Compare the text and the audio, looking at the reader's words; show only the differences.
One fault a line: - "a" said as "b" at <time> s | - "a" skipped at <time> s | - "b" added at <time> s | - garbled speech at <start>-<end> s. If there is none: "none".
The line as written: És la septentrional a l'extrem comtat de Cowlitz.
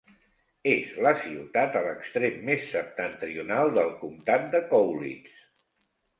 - "septentrional" said as "ciutat" at 1.2 s
- "més septentrional del" added at 2.5 s